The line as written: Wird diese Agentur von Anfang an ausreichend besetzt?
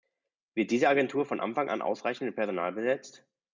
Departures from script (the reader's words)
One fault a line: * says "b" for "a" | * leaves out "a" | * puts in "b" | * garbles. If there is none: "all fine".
* puts in "mit Personal"